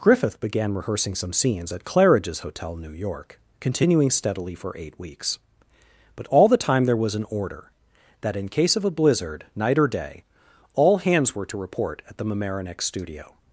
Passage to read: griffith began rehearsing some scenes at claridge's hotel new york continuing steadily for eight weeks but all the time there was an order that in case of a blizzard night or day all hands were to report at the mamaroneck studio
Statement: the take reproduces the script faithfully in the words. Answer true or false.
true